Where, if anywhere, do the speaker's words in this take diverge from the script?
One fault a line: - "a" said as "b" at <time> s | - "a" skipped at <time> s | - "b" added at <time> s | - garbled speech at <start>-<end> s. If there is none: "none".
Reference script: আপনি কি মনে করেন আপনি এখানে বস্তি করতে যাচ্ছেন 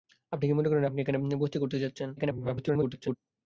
- garbled speech at 2.2-3.2 s